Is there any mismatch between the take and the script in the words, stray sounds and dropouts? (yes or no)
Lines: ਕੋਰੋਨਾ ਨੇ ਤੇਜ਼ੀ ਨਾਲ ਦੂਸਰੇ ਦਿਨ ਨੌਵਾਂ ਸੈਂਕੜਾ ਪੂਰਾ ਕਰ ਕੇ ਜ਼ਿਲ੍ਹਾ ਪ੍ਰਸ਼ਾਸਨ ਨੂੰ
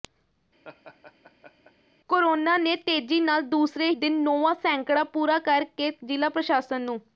yes